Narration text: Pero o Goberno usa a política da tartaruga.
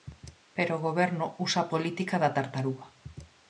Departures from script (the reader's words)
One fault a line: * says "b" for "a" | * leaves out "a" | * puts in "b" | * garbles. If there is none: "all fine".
all fine